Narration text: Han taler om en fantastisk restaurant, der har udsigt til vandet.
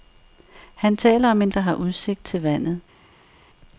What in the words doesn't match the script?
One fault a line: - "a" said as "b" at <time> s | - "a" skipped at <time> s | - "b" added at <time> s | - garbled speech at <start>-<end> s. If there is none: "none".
- "fantastisk restaurant" skipped at 1.5 s